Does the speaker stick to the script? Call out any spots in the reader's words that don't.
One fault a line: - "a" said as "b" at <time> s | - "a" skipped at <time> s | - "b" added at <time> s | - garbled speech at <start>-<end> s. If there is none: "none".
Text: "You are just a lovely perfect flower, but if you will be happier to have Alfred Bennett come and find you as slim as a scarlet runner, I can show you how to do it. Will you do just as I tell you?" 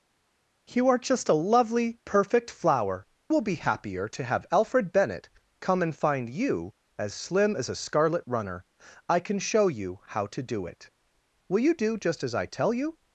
- "but if you" skipped at 3.0 s